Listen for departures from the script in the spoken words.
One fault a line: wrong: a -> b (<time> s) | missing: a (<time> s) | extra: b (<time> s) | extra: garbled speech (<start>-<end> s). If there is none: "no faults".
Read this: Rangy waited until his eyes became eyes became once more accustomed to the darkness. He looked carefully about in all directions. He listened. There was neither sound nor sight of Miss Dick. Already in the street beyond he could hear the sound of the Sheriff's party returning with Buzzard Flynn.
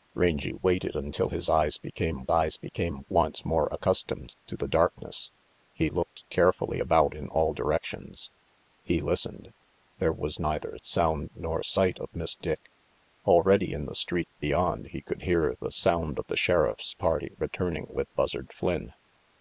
no faults